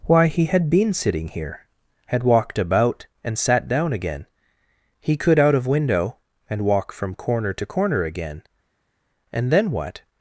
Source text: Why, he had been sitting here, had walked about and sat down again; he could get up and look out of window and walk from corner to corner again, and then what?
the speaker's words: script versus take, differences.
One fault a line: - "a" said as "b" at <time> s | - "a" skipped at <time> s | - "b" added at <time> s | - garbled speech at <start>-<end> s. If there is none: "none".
- "get up and look" skipped at 5.4 s